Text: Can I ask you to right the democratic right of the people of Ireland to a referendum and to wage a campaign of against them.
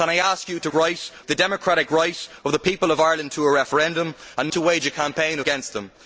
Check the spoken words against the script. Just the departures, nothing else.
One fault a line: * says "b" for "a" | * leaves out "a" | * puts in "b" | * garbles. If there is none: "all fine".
all fine